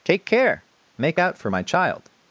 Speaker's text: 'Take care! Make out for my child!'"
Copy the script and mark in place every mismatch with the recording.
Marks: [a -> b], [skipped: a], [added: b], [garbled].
'Take care! Make out for my child!'"